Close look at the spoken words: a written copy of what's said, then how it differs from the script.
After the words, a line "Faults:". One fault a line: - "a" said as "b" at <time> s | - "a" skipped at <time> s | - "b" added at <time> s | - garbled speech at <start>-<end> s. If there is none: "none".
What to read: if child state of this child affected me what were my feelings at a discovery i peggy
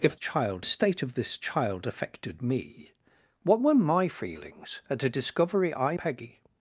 if child state of this child affected me what were my feelings at a discovery i peggy
Faults:
none